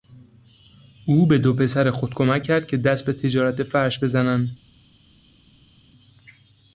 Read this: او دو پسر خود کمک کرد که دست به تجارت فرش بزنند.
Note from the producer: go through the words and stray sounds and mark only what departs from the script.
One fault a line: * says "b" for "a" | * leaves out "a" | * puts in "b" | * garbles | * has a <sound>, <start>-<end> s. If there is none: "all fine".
* puts in "به"